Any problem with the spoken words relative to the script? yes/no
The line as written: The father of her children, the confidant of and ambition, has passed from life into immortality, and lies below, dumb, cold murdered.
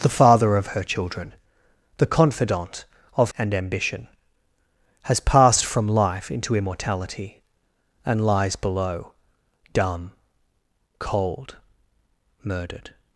no